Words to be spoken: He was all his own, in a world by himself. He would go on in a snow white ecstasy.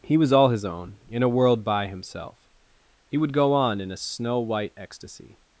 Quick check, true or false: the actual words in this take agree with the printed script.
true